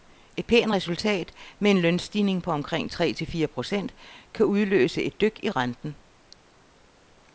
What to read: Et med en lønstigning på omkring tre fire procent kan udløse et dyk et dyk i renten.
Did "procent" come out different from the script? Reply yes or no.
no